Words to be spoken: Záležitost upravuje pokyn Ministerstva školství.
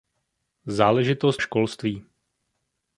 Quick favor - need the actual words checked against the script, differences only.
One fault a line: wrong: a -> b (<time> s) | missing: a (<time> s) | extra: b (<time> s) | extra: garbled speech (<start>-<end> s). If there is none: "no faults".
missing: upravuje pokyn Ministerstva (1.4 s)